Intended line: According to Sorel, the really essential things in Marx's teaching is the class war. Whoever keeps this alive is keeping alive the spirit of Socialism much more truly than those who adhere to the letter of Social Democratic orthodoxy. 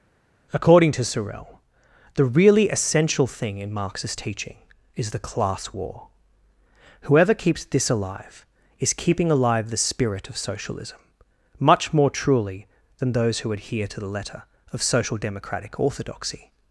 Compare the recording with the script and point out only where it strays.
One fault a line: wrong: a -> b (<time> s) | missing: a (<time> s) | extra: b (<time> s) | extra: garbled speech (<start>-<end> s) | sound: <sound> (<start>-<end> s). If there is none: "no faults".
wrong: things -> thing (3.3 s)